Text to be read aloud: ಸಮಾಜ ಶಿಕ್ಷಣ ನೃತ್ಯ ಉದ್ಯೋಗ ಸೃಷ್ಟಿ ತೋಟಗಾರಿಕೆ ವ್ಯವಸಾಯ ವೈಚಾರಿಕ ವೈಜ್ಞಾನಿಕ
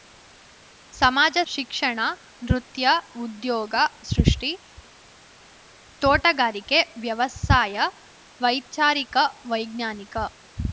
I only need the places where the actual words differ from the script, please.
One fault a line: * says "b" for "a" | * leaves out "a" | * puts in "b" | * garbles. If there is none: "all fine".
all fine